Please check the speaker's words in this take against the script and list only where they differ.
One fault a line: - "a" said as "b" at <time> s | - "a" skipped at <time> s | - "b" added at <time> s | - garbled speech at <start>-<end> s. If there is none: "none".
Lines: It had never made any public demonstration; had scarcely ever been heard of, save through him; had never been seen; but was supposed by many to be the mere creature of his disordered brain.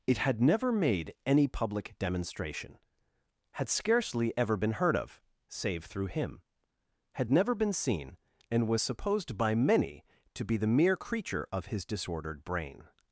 - "but" said as "and" at 8.5 s